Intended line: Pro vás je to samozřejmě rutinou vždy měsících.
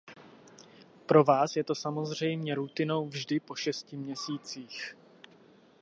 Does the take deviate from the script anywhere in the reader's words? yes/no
yes